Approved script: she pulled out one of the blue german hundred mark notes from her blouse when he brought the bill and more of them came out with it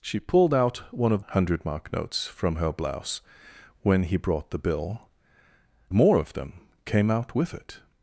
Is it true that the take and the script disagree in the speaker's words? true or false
true